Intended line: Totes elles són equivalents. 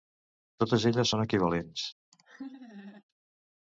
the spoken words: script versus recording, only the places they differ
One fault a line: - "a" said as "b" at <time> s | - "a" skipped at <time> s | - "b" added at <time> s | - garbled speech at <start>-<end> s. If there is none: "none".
none